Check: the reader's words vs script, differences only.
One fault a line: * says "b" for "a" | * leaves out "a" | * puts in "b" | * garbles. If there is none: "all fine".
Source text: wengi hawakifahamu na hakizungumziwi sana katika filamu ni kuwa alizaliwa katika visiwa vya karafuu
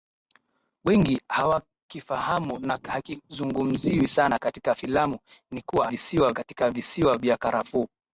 * says "visiwa" for "alizaliwa"